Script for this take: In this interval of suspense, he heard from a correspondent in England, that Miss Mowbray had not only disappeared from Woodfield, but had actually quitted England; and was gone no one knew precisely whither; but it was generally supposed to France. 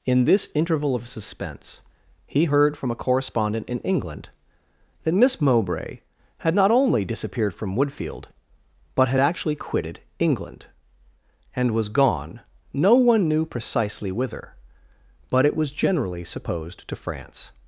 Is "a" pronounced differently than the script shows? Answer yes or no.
no